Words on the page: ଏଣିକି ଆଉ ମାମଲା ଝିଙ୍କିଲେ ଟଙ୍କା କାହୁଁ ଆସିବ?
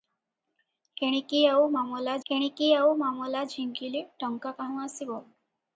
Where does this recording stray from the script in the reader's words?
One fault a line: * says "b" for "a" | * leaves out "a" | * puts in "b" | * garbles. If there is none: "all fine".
* puts in "ଏଣିକି ଆଉ ମାମଲା"